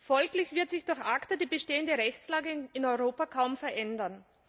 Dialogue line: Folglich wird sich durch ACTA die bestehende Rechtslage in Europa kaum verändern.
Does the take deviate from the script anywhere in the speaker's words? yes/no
no